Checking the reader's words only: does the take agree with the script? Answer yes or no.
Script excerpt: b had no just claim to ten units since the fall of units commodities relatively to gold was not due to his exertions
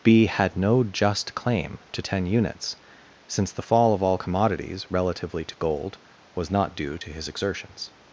no